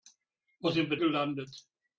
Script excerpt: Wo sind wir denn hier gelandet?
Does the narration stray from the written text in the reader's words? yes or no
yes